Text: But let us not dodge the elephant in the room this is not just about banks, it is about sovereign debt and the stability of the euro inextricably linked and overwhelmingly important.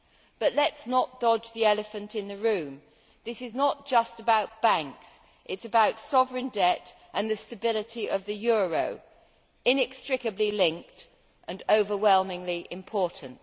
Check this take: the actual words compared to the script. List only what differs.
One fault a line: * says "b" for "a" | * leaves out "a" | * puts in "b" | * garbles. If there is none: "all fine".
all fine